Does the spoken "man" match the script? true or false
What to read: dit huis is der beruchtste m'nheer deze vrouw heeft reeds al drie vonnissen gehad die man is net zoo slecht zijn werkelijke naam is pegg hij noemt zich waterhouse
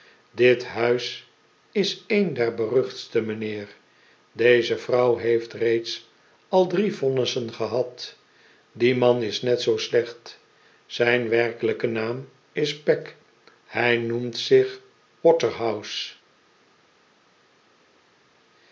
true